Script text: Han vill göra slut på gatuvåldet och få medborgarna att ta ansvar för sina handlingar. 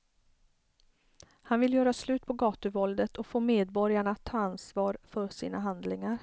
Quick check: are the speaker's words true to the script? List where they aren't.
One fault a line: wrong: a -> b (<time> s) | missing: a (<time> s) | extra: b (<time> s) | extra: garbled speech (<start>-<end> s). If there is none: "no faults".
no faults